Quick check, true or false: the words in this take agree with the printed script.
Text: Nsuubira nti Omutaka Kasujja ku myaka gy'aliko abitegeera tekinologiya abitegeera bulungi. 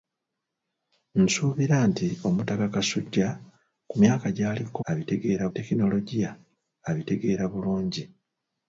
true